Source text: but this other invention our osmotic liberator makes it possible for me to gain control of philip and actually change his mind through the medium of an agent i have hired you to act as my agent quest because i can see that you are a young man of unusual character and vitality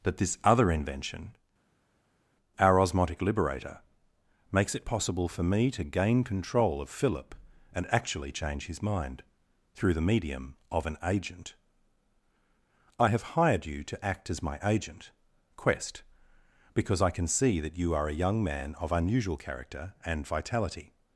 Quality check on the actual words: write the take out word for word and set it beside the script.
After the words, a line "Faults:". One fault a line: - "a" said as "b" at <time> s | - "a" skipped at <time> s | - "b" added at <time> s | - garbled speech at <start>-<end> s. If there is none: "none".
that this other invention our osmotic liberator makes it possible for me to gain control of philip and actually change his mind through the medium of an agent i have hired you to act as my agent quest because i can see that you are a young man of unusual character and vitality
Faults:
- "but" said as "that" at 0.0 s